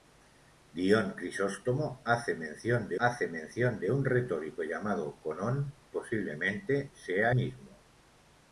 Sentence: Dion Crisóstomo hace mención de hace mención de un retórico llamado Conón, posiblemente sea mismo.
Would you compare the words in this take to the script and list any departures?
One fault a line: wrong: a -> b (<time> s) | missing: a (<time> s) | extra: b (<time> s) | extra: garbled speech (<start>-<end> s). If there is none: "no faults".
no faults